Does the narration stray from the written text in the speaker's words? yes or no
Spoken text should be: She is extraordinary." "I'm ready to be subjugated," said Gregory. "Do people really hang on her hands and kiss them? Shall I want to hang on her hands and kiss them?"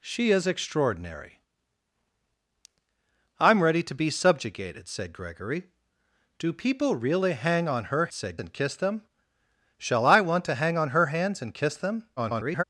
yes